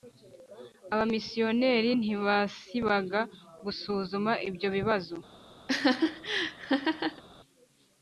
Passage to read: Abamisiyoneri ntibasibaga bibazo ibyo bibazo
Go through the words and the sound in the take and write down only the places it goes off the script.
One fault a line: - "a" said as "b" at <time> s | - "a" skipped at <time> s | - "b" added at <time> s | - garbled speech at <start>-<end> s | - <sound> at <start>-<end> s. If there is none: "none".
- "bibazo" said as "gusuzuma" at 3.6 s
- laugh at 5.7-7.2 s